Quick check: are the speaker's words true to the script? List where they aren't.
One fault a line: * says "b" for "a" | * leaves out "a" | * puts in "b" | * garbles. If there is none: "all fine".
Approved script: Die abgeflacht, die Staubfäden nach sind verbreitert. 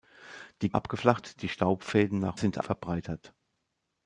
all fine